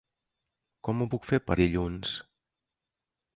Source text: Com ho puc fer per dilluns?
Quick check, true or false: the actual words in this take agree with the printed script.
true